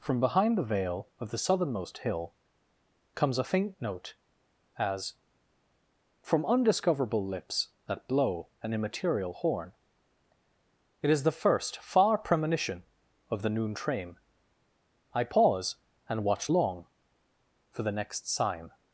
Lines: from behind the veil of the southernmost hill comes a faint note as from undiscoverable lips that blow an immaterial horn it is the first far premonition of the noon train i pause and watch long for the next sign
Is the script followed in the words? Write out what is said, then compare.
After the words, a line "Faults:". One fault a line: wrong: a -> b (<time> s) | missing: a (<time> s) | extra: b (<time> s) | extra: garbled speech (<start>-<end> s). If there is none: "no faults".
from behind the veil of the southernmost hill comes a faint note as from undiscoverable lips that blow an immaterial horn it is the first far premonition of the noon train i pause and watch long for the next sign
Faults:
no faults